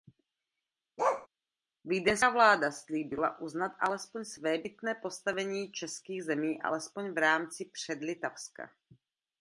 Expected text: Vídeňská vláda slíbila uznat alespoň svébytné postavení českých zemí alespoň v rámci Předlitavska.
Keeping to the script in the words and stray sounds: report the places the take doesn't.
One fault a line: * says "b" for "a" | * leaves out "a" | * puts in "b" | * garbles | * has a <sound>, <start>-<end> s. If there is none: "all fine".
* has a bark, 1.0-1.3 s